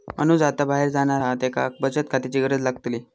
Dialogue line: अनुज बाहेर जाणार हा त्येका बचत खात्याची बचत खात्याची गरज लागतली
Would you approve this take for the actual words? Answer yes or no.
no